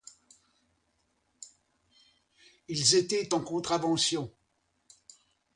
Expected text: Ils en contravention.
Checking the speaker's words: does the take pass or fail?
fail